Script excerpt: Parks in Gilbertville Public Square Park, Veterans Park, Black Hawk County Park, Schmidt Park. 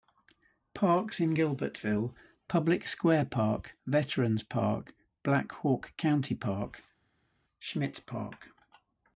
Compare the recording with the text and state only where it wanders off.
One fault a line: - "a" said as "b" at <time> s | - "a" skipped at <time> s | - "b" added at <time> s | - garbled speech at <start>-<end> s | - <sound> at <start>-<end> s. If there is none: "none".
none